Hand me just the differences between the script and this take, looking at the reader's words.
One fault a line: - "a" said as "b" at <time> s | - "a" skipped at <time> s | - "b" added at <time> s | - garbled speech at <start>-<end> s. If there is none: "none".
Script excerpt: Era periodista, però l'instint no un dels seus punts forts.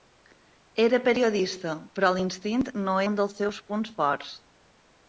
none